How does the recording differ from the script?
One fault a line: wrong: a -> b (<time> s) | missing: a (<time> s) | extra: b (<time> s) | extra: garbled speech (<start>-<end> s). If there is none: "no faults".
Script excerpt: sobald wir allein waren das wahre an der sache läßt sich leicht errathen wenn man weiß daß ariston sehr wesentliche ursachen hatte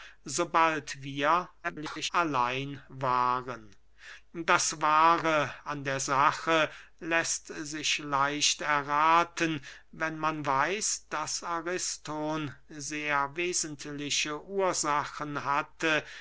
extra: garbled speech (1.6-2.1 s)